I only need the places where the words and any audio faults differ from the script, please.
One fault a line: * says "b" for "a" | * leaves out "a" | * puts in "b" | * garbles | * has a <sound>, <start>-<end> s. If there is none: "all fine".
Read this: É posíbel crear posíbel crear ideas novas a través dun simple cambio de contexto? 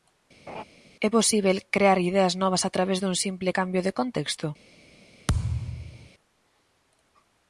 * has a laugh, 0.5-0.6 s
* leaves out "posíbel crear"
* has a thud, 5.3-6.1 s